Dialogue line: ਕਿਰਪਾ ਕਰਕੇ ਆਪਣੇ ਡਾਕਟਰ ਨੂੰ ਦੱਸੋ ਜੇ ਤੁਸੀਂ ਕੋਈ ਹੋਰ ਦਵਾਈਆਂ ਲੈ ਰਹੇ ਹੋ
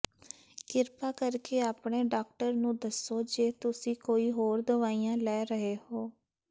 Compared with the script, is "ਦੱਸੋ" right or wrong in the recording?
right